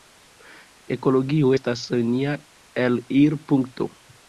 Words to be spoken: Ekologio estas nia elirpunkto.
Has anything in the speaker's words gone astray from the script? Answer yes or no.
no